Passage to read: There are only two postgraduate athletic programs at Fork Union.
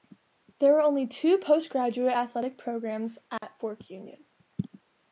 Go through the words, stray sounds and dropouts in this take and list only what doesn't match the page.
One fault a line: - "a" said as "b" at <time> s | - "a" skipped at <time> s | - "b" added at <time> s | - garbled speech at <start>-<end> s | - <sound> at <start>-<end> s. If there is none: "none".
- dropout at 3.4-3.4 s